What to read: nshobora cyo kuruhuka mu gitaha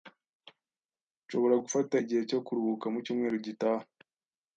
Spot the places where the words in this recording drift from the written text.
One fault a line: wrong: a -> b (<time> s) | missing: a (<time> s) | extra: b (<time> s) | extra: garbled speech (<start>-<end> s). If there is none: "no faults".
extra: gufata igihe (1.6 s)
extra: cyumweru (3.0 s)